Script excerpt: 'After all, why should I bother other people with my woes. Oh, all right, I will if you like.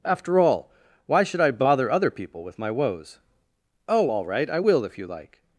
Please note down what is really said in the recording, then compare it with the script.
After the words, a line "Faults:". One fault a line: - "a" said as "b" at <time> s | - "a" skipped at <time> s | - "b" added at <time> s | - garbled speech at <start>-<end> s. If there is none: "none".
'After all, why should I bother other people with my woes. Oh, all right, I will if you like.
Faults:
none